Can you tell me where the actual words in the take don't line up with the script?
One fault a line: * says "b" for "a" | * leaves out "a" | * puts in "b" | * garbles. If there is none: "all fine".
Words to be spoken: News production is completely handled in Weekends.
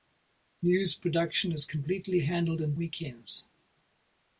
all fine